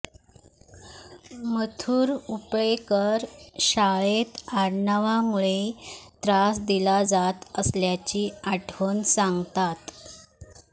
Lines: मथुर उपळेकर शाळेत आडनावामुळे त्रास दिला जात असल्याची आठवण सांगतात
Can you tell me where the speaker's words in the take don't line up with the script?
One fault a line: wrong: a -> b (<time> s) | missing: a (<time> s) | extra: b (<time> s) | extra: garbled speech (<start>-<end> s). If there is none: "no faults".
no faults